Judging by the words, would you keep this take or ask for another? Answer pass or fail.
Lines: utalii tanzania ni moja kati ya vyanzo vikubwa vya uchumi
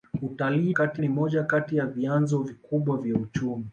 fail